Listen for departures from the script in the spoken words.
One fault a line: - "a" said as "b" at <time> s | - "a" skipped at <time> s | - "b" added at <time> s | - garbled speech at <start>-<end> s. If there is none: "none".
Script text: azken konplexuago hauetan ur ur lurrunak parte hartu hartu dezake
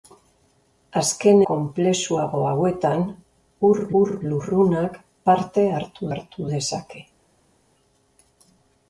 none